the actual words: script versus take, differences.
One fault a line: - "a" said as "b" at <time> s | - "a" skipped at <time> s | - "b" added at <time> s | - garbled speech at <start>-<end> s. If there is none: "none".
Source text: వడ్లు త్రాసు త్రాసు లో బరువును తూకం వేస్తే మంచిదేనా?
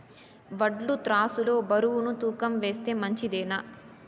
- "త్రాసు" skipped at 1.4 s